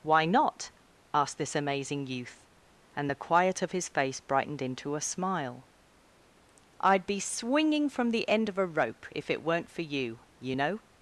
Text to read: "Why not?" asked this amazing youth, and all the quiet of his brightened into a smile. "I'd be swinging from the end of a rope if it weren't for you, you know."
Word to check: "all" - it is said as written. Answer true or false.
false